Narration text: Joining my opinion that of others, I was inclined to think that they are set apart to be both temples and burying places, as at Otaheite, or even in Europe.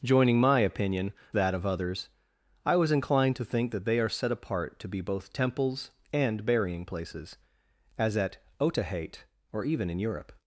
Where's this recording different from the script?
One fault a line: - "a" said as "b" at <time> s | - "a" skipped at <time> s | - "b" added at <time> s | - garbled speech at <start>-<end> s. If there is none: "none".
none